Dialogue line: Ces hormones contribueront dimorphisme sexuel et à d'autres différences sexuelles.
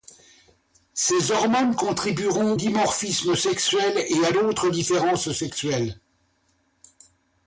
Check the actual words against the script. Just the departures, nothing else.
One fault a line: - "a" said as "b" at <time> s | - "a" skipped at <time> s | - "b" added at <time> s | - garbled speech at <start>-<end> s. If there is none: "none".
none